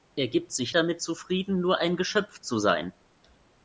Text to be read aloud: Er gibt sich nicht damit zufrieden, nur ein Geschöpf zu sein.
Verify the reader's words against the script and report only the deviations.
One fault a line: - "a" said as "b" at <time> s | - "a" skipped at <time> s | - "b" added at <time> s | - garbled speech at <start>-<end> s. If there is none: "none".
- "nicht" skipped at 0.7 s